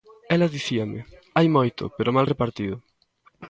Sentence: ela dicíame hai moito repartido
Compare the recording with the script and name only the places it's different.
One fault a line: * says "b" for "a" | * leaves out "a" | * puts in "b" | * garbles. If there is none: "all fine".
* puts in "pero mal"